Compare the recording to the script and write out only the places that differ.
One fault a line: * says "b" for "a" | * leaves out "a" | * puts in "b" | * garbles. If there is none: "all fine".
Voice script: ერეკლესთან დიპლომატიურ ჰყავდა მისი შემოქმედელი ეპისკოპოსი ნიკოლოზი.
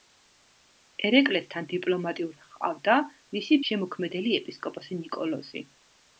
all fine